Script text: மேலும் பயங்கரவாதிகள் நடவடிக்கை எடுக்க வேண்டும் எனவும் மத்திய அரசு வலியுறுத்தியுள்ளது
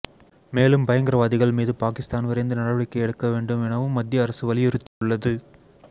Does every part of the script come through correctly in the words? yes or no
no